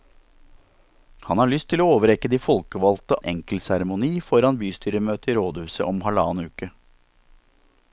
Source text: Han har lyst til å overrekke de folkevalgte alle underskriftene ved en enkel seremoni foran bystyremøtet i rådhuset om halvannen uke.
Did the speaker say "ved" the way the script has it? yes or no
no